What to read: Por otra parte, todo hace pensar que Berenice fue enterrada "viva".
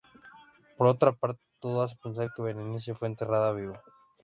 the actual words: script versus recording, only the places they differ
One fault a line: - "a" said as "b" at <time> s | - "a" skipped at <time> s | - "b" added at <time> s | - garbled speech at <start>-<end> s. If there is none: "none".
none